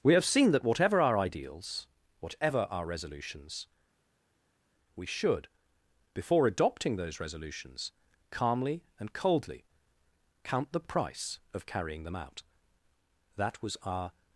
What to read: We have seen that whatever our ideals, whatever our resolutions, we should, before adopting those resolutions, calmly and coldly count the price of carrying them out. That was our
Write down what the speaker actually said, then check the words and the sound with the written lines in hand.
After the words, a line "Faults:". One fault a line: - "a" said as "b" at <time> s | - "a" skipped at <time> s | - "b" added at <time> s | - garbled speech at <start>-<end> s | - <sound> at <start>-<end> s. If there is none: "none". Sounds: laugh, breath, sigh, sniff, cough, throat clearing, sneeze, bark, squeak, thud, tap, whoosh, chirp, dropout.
We have seen that whatever our ideals, whatever our resolutions, we should, before adopting those resolutions, calmly and coldly count the price of carrying them out. That was our
Faults:
none